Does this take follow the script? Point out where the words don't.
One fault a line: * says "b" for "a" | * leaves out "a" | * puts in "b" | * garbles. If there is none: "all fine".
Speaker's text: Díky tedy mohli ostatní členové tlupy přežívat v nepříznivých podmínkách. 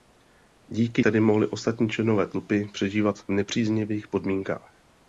all fine